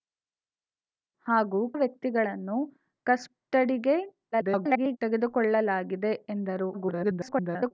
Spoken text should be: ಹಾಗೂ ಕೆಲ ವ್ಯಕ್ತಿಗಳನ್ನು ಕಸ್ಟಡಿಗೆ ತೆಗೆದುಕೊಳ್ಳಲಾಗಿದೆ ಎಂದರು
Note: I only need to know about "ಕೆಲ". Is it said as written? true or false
false